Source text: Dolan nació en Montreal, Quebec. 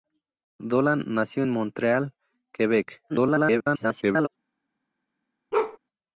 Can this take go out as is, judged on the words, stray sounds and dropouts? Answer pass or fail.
fail